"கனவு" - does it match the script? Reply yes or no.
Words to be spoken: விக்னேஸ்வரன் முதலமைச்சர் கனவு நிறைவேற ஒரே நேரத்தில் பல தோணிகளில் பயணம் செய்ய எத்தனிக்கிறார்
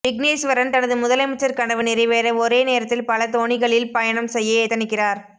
yes